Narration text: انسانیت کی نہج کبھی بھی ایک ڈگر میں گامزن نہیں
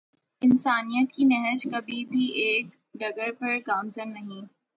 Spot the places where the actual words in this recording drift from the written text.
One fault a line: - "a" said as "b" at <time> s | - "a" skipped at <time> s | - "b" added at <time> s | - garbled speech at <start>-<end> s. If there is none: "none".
- "میں" said as "پر" at 3.4 s